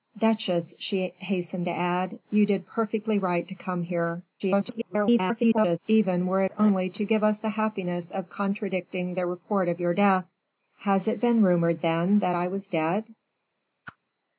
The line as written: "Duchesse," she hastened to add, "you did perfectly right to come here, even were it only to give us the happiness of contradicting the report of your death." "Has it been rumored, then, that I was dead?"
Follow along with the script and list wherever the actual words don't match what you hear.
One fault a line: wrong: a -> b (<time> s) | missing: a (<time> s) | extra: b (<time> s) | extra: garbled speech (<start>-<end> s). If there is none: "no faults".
extra: garbled speech (4.4-5.8 s)